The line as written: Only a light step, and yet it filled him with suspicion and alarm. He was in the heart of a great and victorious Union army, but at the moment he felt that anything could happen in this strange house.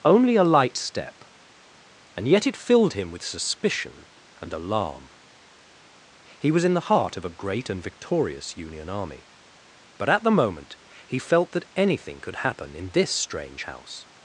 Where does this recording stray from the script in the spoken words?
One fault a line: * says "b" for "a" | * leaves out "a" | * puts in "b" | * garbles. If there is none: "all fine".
all fine